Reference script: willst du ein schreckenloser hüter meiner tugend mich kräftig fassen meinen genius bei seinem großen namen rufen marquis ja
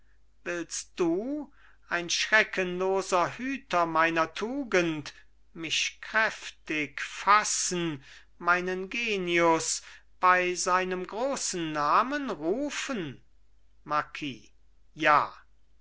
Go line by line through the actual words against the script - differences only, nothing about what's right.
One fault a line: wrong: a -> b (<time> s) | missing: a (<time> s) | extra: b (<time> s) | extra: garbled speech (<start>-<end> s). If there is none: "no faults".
no faults